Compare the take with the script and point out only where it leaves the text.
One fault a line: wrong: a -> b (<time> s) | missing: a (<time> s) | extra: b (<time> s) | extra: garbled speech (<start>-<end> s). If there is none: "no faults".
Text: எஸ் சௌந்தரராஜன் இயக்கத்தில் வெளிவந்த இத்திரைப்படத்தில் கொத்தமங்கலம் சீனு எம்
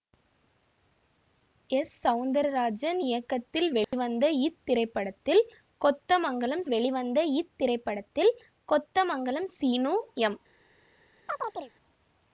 extra: வெளிவந்த இத்திரைப்படத்தில் கொத்தமங்கலம் (6.7 s)